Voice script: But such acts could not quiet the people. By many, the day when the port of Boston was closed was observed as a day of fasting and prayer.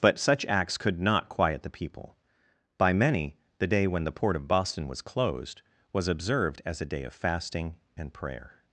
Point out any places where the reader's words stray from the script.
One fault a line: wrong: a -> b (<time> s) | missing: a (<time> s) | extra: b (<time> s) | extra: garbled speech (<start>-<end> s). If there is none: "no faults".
no faults